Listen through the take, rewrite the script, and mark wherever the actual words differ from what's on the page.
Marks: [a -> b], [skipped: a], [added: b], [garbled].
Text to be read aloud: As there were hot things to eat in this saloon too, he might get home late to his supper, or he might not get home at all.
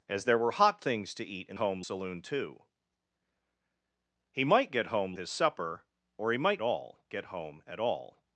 As there were hot things to eat in [this -> home] saloon too, he might get home [skipped: late to] his supper, or he might [not -> all] get home at all.